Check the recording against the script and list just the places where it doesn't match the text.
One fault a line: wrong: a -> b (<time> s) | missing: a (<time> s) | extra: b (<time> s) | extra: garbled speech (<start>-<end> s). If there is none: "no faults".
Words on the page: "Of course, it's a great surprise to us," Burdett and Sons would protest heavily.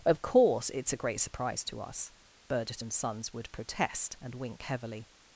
extra: and wink (4.2 s)